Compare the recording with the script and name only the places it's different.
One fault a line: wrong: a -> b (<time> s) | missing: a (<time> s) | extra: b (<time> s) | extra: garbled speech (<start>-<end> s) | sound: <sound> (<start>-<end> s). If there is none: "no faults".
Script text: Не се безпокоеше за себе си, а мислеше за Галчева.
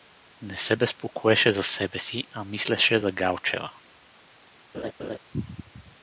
sound: laugh (4.7-5.2 s)